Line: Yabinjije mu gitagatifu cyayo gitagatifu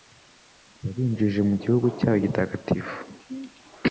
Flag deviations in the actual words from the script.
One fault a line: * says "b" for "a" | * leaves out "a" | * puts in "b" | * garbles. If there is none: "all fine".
* says "gihugu" for "gitagatifu"